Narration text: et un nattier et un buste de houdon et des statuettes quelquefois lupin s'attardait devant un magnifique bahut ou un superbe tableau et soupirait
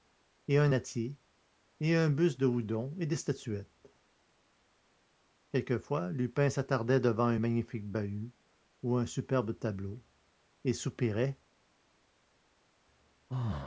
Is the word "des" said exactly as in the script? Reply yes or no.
yes